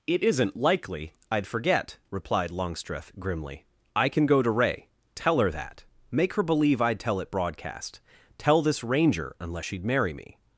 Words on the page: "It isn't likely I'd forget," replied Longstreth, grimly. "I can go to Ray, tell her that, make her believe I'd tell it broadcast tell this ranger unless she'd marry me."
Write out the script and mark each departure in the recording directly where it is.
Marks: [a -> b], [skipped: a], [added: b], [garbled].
"It isn't likely I'd forget," replied Longstreth, grimly. "I can go to Ray, tell her that, make her believe I'd tell it broadcast tell this ranger unless she'd marry me."